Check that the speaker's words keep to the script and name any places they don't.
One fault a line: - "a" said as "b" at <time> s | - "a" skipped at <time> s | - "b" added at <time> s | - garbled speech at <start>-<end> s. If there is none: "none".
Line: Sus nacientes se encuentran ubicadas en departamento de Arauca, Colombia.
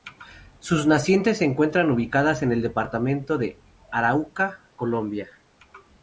- "el" added at 2.5 s